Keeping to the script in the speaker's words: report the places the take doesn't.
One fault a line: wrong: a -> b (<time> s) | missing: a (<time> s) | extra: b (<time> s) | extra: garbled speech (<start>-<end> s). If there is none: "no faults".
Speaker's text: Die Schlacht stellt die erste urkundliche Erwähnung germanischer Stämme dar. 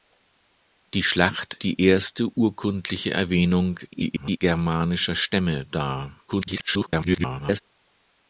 missing: stellt (1.6 s)
extra: garbled speech (3.9-4.4 s)
extra: garbled speech (6.3-7.6 s)